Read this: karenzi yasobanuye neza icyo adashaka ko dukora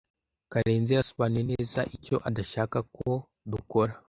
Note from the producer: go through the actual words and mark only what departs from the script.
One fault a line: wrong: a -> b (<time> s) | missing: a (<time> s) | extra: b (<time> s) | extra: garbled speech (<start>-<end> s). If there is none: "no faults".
no faults